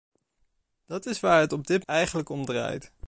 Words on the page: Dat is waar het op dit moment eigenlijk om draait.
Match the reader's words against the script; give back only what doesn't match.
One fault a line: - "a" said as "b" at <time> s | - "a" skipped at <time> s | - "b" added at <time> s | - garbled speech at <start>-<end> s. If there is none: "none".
- "moment" skipped at 1.8 s